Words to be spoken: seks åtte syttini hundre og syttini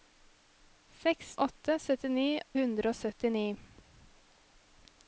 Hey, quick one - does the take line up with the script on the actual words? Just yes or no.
yes